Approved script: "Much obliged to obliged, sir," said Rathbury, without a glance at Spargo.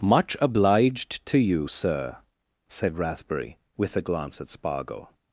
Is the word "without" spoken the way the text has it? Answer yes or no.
no